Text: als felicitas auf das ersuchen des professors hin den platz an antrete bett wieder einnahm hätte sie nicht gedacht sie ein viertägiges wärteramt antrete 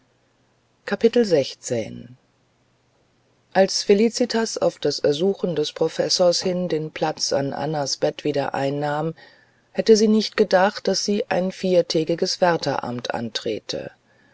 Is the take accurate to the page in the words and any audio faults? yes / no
no